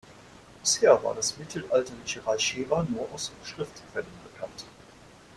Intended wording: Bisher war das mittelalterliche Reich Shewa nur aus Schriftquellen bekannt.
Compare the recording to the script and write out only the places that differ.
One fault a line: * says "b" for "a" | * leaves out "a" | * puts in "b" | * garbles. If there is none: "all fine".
all fine